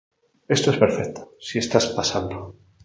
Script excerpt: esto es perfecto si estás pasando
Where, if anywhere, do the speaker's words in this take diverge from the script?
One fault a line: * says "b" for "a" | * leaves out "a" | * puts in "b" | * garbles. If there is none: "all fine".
all fine